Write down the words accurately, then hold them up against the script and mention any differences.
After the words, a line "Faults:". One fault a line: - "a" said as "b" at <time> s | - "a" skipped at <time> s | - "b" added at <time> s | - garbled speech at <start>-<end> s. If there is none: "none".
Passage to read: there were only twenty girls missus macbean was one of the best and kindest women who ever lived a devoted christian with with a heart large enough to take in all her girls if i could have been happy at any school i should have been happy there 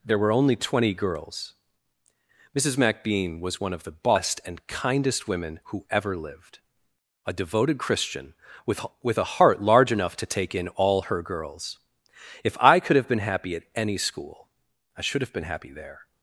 there were only twenty girls missus macbean was one of the best and kindest women who ever lived a devoted christian with with a heart large enough to take in all her girls if i could have been happy at any school i should have been happy there
Faults:
none